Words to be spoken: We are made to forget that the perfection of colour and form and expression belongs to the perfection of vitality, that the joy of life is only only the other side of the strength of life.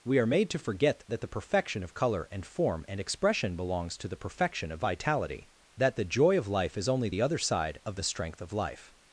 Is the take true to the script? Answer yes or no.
no